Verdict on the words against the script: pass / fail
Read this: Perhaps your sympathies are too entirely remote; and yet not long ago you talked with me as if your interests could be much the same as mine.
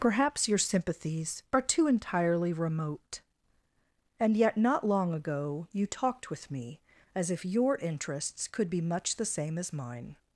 pass